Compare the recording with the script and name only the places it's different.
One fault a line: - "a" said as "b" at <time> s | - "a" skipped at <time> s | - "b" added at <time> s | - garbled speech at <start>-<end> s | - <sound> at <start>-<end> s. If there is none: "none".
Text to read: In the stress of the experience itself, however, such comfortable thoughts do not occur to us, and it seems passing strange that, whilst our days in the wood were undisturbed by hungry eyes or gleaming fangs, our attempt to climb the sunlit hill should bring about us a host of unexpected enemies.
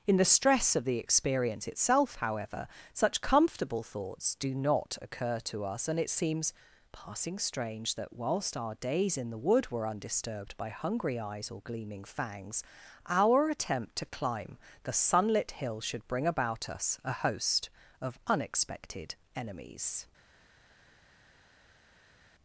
none